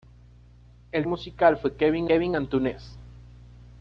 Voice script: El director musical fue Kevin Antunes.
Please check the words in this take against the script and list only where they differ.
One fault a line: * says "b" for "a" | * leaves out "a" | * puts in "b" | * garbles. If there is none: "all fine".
* leaves out "director"
* puts in "Kevin"